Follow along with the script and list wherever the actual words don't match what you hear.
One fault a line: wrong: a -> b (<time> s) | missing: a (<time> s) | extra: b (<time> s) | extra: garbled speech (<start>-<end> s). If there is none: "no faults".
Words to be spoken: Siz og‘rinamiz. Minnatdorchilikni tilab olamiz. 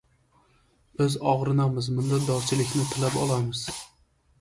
wrong: Siz -> Biz (1.0 s)